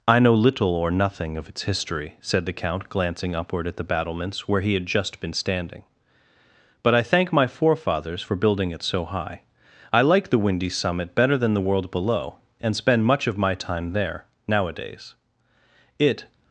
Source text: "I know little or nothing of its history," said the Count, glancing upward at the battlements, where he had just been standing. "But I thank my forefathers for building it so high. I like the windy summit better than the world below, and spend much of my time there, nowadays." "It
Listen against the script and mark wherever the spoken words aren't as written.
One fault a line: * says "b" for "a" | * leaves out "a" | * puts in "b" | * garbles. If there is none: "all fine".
all fine